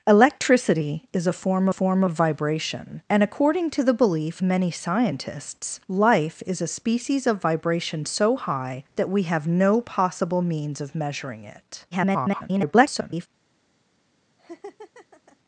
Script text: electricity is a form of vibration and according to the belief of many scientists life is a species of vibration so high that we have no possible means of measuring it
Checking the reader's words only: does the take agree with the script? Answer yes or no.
no